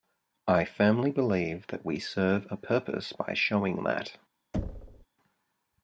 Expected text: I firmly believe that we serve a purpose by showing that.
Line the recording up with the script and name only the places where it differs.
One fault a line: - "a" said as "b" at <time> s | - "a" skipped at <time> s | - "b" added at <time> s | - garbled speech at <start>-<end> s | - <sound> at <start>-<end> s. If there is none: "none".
- thud at 4.5-5.1 s